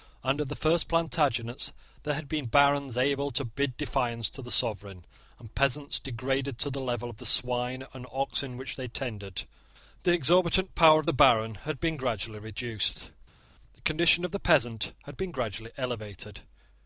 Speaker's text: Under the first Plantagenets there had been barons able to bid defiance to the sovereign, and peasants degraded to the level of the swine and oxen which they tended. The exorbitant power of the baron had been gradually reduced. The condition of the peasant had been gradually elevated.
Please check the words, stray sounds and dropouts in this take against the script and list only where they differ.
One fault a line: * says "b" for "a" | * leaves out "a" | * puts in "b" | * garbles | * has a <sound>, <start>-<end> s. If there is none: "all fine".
all fine